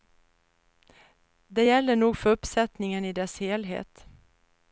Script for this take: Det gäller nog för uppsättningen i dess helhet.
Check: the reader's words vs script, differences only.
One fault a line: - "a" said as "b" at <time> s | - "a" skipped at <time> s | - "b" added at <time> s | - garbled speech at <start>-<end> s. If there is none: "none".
none